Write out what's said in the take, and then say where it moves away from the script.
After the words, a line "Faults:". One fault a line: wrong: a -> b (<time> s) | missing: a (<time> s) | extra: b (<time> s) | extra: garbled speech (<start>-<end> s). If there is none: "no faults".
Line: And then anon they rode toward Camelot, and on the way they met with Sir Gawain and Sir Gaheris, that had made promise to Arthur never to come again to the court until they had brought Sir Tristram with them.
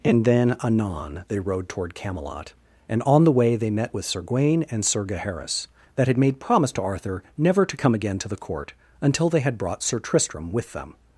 And then anon they rode toward Camelot, and on the way they met with Sir Gawain and Sir Gaheris, that had made promise to Arthur never to come again to the court until they had brought Sir Tristram with them.
Faults:
no faults